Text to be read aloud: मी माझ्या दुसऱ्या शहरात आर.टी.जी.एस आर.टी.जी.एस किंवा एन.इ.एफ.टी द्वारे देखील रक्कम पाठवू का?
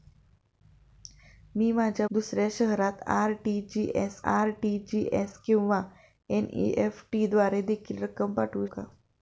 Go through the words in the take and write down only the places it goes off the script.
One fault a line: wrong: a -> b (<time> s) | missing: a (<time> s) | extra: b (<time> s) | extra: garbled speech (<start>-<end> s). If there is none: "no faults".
no faults